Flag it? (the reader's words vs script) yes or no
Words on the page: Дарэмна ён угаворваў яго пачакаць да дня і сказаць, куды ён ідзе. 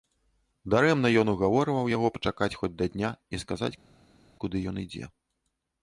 yes